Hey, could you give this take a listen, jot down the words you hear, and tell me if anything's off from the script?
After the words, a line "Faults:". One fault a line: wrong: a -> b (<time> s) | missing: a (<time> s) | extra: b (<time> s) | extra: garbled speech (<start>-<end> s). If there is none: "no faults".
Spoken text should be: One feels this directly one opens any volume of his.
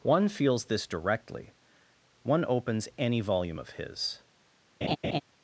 One feels this directly one opens any volume of his.
Faults:
no faults